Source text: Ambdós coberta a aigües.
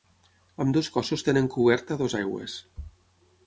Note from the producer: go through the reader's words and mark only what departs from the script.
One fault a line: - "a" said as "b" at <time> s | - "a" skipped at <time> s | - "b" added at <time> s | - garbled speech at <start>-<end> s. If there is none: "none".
- "cossos tenen" added at 0.9 s
- "dues" added at 2.0 s